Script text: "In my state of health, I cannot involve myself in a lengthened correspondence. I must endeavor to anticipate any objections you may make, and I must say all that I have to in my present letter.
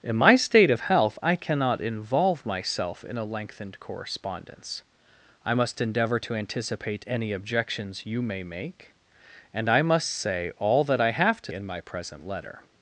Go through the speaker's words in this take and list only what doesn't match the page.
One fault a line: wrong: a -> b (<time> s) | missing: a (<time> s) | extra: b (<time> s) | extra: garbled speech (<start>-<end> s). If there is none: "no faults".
no faults